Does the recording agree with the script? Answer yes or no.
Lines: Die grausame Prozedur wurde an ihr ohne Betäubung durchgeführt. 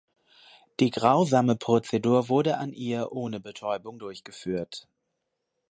yes